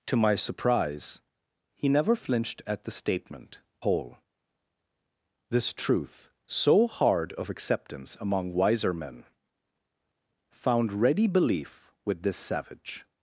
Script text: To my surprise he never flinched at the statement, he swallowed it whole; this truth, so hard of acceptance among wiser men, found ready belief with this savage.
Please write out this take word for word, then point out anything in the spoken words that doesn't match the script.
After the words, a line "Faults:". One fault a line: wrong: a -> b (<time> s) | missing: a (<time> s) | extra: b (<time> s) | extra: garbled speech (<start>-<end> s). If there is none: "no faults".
To my surprise he never flinched at the statement, whole; this truth, so hard of acceptance among wiser men, found ready belief with this savage.
Faults:
missing: he swallowed it (3.6 s)